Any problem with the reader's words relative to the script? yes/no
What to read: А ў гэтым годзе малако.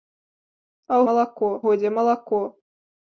yes